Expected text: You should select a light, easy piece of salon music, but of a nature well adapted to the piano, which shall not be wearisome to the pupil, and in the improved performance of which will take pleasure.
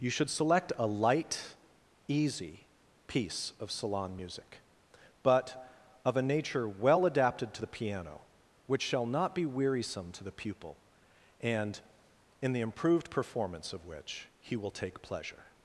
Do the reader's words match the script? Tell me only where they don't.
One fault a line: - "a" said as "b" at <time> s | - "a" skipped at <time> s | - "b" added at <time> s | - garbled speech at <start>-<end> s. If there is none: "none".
- "he" added at 14.4 s